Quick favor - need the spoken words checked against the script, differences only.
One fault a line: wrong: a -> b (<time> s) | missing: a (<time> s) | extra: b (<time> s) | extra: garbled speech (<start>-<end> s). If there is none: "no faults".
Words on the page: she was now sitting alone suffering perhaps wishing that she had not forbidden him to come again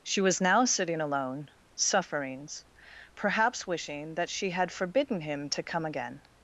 wrong: suffering -> sufferings (1.8 s)
missing: not (4.7 s)